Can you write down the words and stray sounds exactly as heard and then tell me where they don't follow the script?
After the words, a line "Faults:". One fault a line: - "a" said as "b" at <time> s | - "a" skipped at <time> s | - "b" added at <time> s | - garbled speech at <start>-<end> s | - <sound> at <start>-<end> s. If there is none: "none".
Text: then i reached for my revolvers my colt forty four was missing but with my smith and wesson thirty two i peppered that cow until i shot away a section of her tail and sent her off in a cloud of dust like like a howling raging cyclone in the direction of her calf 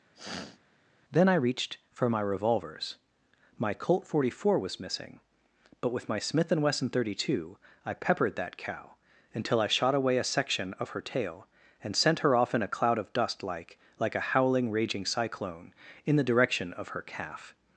then i reached for my revolvers my colt forty four was missing but with my smith and wesson thirty two i peppered that cow until i shot away a section of her tail and sent her off in a cloud of dust like like a howling raging cyclone in the direction of her calf
Faults:
- sniff at 0.1-0.6 s